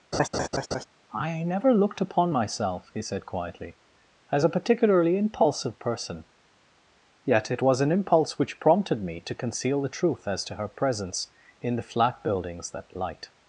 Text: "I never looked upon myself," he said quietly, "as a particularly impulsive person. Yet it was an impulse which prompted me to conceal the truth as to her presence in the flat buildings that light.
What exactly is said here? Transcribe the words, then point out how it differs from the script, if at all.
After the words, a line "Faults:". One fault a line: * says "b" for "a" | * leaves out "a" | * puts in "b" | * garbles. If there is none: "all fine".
"I never looked upon myself," he said quietly, "as a particularly impulsive person. Yet it was an impulse which prompted me to conceal the truth as to her presence in the flat buildings that light.
Faults:
all fine